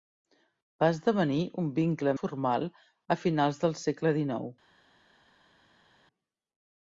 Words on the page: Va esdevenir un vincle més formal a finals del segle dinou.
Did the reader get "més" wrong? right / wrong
wrong